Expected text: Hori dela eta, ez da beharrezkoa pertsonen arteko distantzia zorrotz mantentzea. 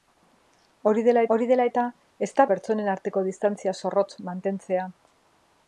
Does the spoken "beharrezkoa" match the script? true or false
false